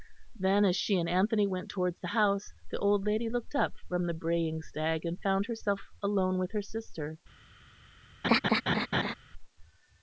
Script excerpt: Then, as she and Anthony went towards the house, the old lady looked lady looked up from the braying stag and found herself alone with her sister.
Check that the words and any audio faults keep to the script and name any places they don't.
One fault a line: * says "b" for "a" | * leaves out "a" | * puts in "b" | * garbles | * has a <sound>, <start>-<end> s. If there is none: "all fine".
* leaves out "lady looked"
* has a laugh, 8.2-9.1 s